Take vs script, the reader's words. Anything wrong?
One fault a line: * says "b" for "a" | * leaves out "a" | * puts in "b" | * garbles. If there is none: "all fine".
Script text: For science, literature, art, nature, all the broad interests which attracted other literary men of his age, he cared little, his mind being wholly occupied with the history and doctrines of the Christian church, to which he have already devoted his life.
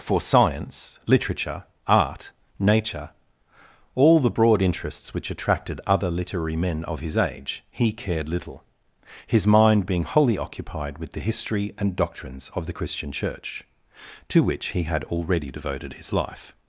* says "had" for "have"